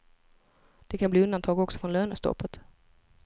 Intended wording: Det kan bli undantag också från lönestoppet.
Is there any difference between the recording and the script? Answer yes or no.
no